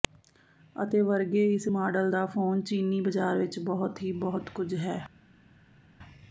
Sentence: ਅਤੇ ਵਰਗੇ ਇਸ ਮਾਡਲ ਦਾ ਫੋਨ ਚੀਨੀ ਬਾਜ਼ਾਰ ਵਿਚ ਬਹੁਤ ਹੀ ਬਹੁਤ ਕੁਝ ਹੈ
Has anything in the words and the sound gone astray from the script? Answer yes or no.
no